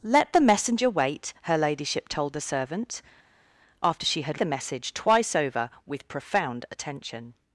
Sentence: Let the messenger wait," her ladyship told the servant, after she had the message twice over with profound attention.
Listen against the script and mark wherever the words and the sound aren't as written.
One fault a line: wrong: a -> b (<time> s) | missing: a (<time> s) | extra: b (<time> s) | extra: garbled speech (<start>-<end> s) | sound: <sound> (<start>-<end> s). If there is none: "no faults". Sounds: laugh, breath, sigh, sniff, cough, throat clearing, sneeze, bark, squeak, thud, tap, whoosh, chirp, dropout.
no faults